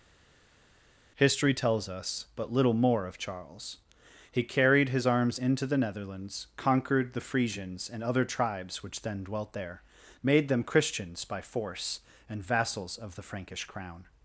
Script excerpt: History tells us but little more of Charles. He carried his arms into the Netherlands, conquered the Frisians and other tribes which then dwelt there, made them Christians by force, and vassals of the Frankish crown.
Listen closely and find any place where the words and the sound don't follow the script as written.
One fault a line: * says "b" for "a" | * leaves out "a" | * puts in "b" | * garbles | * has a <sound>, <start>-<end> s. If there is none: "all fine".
all fine